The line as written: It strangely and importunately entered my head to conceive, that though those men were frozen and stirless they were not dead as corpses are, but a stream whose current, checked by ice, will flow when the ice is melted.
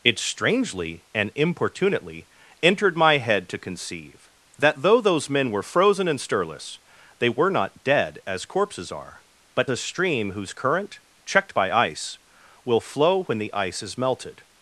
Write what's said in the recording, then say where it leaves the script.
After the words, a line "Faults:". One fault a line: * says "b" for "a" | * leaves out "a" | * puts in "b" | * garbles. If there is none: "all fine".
It strangely and importunately entered my head to conceive, that though those men were frozen and stirless they were not dead as corpses are, but a stream whose current, checked by ice, will flow when the ice is melted.
Faults:
all fine